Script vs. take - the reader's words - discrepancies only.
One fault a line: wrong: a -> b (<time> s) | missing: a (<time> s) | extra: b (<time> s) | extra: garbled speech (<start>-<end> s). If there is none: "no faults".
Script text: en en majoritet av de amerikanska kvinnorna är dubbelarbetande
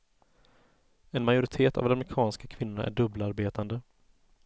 missing: en (1.3 s)